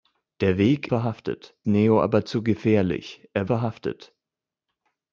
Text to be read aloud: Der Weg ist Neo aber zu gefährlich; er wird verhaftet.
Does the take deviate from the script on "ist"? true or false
true